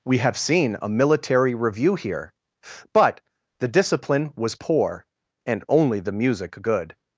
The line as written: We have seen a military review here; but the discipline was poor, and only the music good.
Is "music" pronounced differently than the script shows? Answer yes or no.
no